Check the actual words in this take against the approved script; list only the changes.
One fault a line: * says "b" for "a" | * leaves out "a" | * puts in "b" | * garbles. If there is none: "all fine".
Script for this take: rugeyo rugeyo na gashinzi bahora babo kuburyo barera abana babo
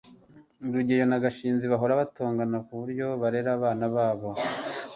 * leaves out "rugeyo"
* says "batongana" for "babo"